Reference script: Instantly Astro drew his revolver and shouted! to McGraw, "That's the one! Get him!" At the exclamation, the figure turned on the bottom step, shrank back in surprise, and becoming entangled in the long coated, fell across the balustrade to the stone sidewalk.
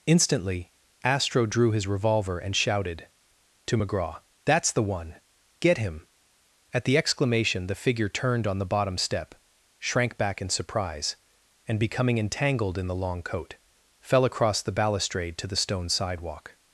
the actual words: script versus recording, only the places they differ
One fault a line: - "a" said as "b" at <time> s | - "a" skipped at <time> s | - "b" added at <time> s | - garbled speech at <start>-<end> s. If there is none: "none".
- "coated" said as "coat" at 13.2 s